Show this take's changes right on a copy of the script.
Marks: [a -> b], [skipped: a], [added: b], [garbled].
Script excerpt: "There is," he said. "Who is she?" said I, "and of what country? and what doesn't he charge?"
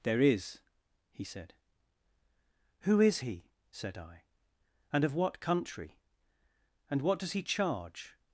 "There is," he said. "Who is [she?" -> he] said I, "and of what country? and what [doesn't -> does] he charge?"